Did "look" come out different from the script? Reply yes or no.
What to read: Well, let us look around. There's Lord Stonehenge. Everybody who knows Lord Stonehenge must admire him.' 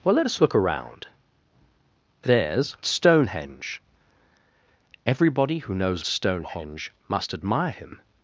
no